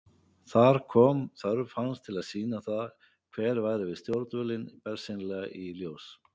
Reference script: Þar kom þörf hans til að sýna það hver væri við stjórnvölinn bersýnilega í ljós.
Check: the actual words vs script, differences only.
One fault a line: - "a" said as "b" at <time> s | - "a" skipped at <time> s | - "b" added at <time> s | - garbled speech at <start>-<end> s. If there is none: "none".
none